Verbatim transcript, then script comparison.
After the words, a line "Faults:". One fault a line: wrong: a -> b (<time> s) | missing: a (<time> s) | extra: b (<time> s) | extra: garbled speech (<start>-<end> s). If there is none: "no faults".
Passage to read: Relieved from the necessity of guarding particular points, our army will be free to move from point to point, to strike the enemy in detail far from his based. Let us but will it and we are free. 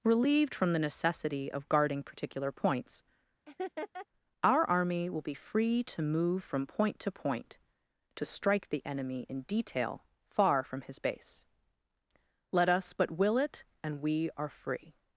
Relieved from the necessity of guarding particular points, our army will be free to move from point to point, to strike the enemy in detail far from his base. Let us but will it and we are free.
Faults:
wrong: based -> base (11.0 s)